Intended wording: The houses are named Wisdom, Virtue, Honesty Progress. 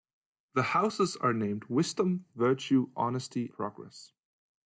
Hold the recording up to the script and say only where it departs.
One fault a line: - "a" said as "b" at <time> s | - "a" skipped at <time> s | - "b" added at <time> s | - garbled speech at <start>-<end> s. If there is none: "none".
none